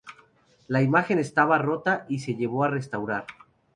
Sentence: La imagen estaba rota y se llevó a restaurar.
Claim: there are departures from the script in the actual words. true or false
false